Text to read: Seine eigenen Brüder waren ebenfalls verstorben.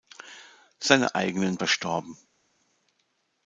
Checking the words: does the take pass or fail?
fail